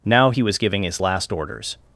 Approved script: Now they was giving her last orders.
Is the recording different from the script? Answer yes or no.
yes